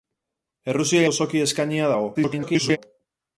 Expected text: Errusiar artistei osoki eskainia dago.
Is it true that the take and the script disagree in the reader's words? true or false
true